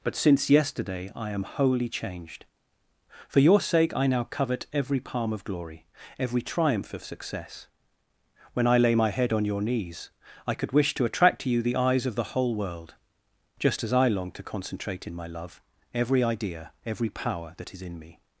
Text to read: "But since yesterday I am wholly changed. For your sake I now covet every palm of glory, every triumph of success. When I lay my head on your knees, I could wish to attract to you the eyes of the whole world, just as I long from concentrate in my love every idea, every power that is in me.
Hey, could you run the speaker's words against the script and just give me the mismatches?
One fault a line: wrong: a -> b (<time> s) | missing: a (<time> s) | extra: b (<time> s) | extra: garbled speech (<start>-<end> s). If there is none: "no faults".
wrong: from -> to (14.3 s)